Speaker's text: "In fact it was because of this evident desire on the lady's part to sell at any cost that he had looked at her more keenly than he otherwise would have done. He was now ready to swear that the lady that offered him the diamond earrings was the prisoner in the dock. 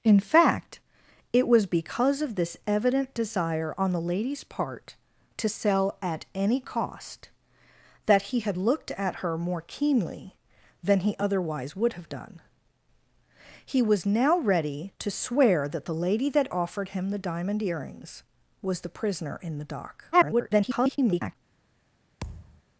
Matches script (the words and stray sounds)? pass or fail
fail